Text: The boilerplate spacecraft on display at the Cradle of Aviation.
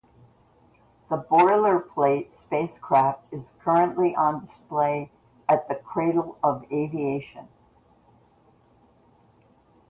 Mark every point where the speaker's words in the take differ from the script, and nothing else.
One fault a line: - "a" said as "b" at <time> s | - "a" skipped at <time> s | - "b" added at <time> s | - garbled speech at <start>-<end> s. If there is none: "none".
- "is currently" added at 3.3 s